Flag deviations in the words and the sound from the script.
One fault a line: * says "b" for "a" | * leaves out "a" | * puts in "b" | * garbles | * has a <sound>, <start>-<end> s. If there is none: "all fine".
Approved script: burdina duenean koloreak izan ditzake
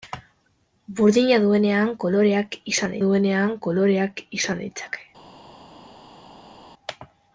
* puts in "duenean koloreak izan"